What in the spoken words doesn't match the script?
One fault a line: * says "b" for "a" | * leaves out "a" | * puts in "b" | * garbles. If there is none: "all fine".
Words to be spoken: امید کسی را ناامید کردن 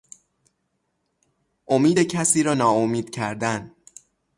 all fine